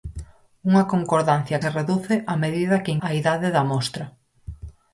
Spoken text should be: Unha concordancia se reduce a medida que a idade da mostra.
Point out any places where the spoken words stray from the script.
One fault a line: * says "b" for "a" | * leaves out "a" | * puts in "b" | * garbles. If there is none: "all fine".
all fine